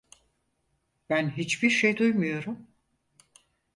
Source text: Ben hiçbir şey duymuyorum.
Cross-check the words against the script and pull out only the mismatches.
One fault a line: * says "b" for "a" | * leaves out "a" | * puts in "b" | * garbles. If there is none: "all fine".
all fine